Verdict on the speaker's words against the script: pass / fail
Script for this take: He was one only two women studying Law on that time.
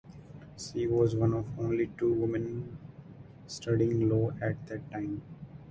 fail